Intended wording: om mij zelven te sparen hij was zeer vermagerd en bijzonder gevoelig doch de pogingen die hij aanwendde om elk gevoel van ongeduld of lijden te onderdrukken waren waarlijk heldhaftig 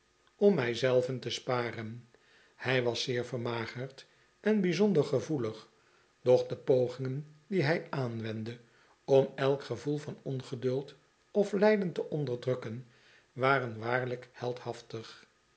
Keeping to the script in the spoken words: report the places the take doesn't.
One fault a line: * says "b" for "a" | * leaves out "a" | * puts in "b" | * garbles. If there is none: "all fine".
all fine